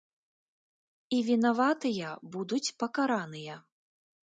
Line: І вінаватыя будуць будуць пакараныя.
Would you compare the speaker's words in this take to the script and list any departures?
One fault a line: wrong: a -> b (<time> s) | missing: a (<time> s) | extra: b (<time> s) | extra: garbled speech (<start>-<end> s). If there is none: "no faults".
missing: будуць (2.6 s)